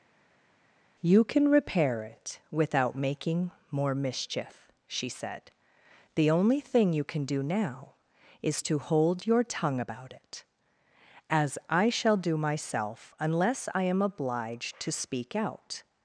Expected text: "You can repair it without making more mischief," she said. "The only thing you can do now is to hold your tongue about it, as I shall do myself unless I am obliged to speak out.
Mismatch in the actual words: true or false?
false